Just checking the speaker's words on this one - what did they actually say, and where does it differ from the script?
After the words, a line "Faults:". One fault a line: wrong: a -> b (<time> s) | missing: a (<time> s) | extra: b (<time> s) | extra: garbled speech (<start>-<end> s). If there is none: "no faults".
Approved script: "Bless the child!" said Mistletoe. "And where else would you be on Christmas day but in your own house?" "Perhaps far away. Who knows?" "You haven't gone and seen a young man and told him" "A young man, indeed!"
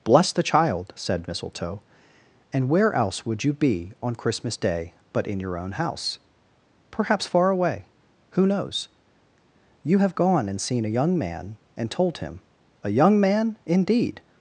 "Bless the child!" said Mistletoe. "And where else would you be on Christmas day but in your own house?" "Perhaps far away. Who knows?" "You have gone and seen a young man and told him" "A young man, indeed!"
Faults:
wrong: haven't -> have (10.0 s)